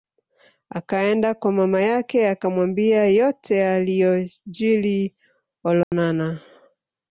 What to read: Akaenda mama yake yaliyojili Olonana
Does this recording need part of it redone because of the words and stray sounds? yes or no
yes